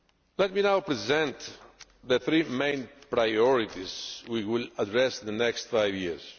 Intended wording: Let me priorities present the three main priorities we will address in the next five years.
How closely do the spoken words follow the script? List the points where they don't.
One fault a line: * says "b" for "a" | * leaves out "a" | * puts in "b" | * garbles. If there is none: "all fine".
* says "now" for "priorities"